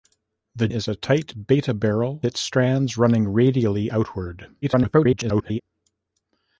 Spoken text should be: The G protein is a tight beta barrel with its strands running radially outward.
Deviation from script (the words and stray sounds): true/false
true